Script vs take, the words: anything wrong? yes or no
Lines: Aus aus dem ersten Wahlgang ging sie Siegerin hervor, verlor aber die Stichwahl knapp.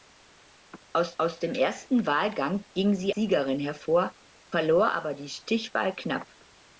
no